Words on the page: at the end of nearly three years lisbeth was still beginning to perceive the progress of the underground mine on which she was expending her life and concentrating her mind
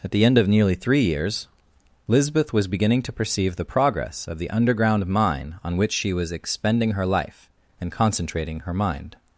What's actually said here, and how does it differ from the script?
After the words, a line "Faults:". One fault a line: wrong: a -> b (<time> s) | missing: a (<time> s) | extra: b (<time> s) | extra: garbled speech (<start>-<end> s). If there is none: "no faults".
at the end of nearly three years lisbeth was beginning to perceive the progress of the underground mine on which she was expending her life and concentrating her mind
Faults:
missing: still (2.7 s)